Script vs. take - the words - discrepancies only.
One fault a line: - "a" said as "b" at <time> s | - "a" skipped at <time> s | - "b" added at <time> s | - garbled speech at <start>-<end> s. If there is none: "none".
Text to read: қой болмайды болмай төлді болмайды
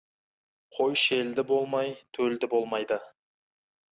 - "болмайды" said as "шелді" at 1.0 s